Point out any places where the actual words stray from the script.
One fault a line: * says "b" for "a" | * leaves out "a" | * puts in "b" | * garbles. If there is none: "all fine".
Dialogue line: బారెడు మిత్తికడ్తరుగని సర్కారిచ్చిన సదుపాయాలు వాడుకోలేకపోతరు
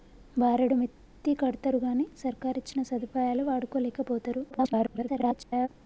* garbles